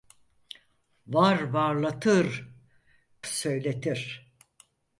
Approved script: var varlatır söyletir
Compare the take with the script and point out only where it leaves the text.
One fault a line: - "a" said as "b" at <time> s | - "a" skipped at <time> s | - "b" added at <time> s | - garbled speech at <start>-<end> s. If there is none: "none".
none